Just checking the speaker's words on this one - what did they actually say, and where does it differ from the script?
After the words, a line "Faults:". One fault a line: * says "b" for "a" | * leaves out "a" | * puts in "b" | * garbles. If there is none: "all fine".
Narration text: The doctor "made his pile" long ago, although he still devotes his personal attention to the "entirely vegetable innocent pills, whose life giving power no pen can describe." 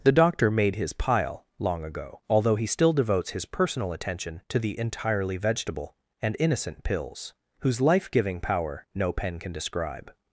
The doctor "made his pile" long ago, although he still devotes his personal attention to the "entirely vegetable and innocent pills, whose life giving power no pen can describe."
Faults:
* puts in "and"